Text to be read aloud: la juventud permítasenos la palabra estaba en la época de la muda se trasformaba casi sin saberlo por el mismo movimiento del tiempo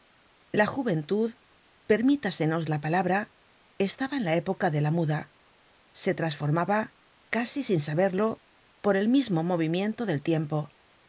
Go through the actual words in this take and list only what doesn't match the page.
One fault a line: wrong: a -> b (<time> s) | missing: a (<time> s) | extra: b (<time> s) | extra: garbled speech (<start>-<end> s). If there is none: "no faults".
no faults